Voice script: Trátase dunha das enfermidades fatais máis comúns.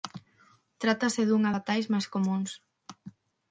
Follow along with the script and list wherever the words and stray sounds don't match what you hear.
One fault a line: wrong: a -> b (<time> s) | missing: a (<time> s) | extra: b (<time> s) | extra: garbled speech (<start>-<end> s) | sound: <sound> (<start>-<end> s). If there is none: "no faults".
missing: das enfermidades (1.5 s)